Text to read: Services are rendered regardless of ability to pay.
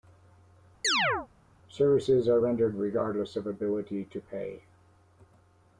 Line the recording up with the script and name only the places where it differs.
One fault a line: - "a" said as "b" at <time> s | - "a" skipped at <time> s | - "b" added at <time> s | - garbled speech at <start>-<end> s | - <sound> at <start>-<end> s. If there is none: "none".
- chirp at 0.8-1.3 s